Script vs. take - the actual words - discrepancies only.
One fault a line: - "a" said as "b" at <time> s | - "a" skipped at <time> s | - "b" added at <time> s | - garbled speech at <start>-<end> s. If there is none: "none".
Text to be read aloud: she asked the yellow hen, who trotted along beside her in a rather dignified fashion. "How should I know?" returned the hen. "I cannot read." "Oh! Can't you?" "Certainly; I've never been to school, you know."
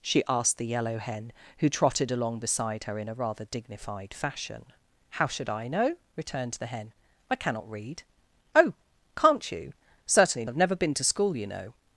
none